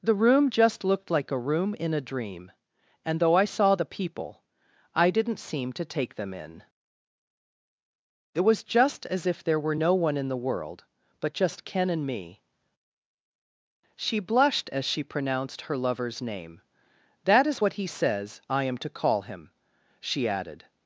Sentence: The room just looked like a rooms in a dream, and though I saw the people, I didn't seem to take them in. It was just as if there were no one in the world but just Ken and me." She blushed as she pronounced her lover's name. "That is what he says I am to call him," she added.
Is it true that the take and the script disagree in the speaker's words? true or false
true